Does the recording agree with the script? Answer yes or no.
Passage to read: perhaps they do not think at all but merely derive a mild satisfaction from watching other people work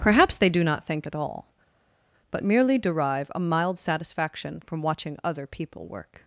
yes